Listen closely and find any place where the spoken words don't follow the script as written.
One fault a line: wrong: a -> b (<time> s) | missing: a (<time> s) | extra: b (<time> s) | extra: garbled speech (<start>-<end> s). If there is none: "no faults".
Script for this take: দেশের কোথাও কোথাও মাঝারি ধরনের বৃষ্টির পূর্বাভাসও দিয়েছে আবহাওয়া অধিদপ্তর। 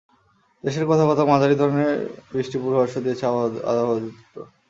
no faults